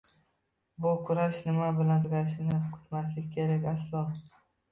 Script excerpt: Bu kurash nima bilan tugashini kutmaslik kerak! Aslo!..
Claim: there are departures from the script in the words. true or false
false